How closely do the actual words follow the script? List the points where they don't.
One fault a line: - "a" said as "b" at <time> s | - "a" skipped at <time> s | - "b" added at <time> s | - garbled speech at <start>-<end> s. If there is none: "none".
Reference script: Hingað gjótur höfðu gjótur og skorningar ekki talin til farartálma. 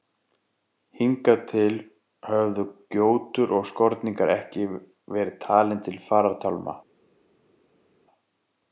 - "gjótur" said as "til" at 1.5 s
- "verið" added at 5.2 s